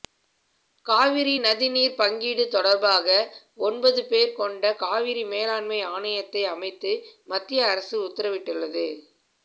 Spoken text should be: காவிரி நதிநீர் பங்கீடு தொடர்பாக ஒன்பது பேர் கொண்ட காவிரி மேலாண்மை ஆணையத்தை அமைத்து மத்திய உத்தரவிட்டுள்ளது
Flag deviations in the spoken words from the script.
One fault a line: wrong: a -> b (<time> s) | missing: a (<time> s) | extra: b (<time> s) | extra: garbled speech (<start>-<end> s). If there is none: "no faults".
extra: அரசு (7.7 s)